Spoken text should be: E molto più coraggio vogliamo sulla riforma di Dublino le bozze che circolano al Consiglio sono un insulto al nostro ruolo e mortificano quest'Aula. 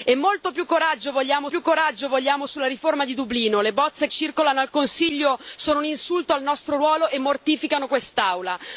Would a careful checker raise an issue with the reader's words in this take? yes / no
yes